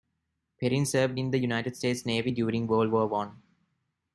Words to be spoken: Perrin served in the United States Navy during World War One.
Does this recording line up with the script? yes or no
yes